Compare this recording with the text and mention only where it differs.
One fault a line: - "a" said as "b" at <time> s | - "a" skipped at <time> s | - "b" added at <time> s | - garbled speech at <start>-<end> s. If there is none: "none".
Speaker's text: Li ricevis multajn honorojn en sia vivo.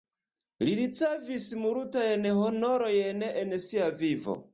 none